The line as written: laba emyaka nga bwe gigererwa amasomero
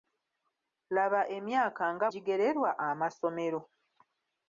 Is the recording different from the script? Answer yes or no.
yes